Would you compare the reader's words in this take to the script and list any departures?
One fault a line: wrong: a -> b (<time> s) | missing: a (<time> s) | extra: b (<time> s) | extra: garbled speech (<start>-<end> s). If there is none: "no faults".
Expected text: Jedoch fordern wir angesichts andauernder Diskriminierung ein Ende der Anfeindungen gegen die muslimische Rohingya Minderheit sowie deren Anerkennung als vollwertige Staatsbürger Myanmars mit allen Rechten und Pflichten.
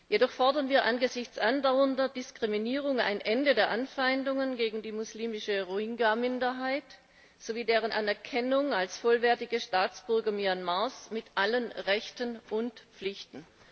no faults